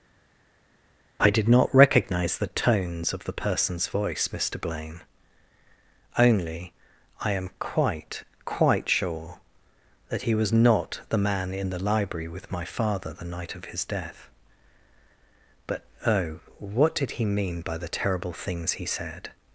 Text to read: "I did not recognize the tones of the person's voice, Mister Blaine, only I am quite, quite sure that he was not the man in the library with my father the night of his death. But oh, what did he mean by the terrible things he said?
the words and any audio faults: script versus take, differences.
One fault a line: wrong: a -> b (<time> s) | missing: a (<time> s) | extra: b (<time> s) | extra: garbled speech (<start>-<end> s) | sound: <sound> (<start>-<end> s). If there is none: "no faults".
no faults